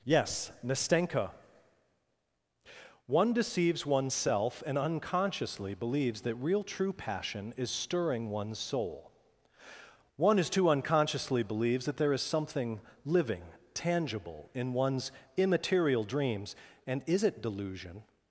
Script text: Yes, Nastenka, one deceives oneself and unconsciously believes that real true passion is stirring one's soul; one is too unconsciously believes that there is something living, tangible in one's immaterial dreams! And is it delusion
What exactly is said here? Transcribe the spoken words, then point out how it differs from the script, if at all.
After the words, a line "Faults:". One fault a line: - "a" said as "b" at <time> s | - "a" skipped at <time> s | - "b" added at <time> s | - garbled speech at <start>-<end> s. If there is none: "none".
Yes, Nastenka, one deceives oneself and unconsciously believes that real true passion is stirring one's soul; one is too unconsciously believes that there is something living, tangible in one's immaterial dreams! And is it delusion
Faults:
none